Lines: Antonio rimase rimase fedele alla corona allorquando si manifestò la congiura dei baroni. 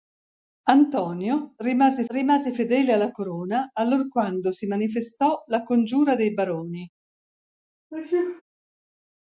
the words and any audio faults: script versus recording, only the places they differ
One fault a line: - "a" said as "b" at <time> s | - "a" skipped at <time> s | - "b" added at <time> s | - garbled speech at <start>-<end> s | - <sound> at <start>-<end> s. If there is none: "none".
- sneeze at 7.9-8.4 s